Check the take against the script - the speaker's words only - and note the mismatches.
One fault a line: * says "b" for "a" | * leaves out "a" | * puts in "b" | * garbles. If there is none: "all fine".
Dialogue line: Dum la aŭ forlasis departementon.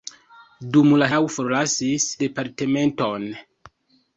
all fine